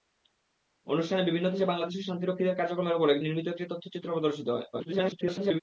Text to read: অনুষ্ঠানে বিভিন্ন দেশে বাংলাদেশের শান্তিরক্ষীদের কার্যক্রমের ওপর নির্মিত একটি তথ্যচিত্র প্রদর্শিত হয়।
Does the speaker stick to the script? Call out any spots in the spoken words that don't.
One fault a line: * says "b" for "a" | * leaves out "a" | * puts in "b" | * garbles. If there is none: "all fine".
* garbles